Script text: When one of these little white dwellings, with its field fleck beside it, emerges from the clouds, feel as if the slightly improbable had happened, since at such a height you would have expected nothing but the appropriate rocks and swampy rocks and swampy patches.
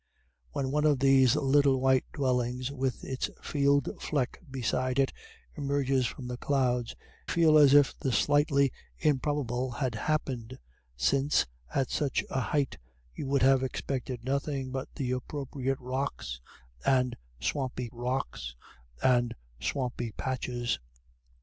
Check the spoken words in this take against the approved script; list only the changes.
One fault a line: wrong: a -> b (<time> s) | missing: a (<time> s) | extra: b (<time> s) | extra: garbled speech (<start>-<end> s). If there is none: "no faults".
no faults